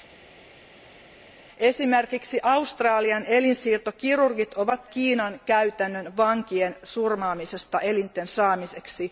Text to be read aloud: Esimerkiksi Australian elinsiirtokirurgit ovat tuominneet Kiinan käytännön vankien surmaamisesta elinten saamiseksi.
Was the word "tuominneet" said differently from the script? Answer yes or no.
yes